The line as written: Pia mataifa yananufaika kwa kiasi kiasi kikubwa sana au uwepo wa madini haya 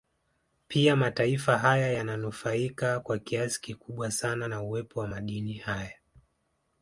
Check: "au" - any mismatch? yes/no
yes